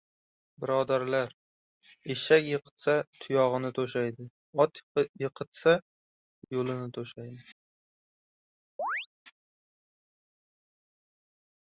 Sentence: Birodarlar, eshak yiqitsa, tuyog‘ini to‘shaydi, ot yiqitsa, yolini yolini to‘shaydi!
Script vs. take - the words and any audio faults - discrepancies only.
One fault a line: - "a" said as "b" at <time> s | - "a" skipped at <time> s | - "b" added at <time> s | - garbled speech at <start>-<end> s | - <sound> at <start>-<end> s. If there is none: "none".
- "yolini" skipped at 6.9 s
- chirp at 8.8-9.1 s